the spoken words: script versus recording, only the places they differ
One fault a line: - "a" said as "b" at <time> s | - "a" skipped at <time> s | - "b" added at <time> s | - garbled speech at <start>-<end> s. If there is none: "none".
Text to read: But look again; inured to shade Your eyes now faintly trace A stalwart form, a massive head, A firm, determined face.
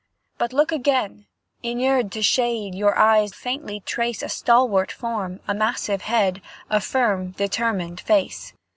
- "now" skipped at 3.4 s